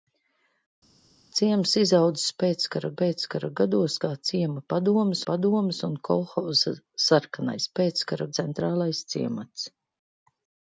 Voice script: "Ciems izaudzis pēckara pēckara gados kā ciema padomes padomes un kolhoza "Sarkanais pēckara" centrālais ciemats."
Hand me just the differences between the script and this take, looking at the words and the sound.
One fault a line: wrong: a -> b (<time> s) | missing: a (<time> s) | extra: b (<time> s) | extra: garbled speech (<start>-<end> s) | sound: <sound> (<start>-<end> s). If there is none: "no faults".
no faults